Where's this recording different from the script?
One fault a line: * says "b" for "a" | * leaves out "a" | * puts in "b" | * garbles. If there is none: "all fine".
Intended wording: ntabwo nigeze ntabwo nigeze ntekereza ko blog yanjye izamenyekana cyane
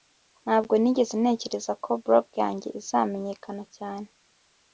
* leaves out "ntabwo nigeze"